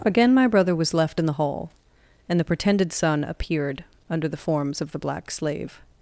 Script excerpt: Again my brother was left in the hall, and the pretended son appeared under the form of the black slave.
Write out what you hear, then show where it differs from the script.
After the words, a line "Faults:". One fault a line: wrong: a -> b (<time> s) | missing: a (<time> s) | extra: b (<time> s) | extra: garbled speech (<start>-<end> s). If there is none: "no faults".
Again my brother was left in the hall, and the pretended son appeared under the forms of the black slave.
Faults:
wrong: form -> forms (4.4 s)